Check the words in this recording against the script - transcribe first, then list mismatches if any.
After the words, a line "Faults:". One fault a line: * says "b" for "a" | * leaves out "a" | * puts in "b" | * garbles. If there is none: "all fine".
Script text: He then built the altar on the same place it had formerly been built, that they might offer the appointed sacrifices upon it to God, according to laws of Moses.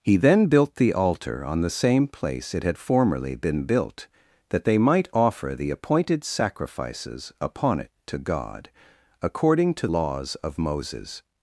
He then built the altar on the same place it had formerly been built, that they might offer the appointed sacrifices upon it to God, according to laws of Moses.
Faults:
all fine